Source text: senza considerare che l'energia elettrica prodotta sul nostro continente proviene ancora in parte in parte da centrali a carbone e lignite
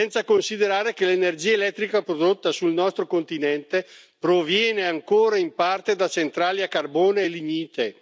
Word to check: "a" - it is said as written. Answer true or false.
true